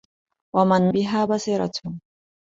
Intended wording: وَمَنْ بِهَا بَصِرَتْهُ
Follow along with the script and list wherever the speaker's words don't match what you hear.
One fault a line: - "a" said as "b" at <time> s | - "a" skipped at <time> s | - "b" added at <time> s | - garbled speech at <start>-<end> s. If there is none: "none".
none